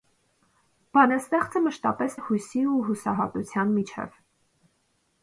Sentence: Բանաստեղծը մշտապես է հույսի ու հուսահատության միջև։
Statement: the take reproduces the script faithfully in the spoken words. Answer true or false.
true